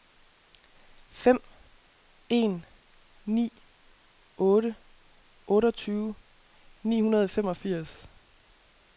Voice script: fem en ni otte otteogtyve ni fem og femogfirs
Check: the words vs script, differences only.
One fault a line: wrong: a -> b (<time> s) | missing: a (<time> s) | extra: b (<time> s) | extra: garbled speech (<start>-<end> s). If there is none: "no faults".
wrong: fem -> hundrede (7.0 s)